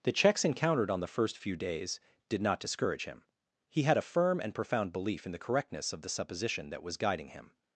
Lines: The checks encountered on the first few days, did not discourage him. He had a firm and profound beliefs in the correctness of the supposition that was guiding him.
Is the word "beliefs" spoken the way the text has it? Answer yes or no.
no